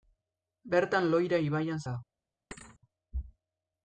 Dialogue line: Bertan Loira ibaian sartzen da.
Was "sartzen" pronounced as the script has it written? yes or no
no